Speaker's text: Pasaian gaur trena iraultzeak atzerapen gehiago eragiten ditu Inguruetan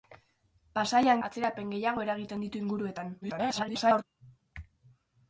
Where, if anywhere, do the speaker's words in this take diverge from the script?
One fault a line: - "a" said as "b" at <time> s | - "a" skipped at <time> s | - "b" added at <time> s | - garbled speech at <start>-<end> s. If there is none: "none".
- "gaur trena iraultzeak" skipped at 1.2 s
- garbled speech at 3.2-4.0 s